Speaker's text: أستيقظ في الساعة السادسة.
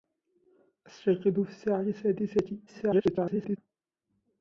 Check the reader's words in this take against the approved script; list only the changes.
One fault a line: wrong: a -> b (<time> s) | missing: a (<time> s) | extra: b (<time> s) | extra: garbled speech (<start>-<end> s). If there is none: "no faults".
extra: garbled speech (2.7-3.6 s)